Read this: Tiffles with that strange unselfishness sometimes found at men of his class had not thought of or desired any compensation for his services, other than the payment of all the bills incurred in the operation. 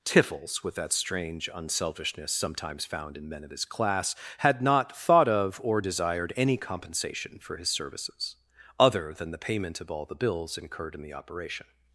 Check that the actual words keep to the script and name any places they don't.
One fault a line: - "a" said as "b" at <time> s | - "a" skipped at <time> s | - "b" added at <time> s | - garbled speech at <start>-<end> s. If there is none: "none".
- "at" said as "in" at 3.2 s